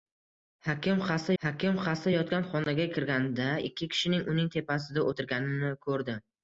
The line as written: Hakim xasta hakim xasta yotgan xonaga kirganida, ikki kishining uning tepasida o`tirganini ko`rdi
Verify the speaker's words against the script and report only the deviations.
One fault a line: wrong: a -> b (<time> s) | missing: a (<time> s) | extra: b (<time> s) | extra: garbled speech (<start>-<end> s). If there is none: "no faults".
no faults